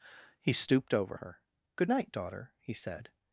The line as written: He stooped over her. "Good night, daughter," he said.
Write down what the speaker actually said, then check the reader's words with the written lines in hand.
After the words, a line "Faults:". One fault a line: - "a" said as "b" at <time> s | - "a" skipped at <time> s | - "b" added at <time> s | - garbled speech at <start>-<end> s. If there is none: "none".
He stooped over her. "Good night, daughter," he said.
Faults:
none